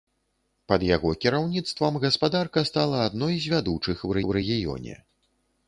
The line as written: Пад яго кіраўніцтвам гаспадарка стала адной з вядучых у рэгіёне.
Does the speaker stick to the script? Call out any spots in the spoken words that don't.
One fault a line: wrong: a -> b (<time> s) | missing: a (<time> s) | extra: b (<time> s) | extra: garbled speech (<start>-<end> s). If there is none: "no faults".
extra: у (4.3 s)